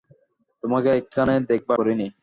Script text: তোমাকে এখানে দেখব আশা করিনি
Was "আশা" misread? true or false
true